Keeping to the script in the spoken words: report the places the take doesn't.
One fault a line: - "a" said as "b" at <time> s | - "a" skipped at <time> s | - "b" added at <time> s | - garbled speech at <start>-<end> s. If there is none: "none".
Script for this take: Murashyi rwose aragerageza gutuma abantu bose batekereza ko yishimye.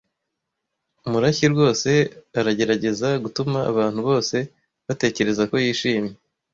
none